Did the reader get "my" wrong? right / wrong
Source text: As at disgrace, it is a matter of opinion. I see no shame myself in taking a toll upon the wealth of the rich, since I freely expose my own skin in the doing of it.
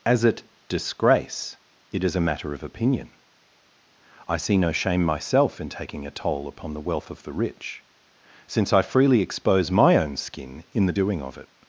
right